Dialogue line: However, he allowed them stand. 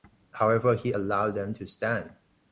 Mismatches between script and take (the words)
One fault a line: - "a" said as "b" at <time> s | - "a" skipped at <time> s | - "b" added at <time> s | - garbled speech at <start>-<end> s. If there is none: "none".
- "to" added at 1.5 s